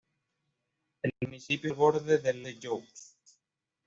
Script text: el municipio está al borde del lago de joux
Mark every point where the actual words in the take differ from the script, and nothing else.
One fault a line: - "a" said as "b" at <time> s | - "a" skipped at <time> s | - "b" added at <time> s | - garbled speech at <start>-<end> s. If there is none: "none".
- "está" skipped at 1.7 s
- "lago" skipped at 2.5 s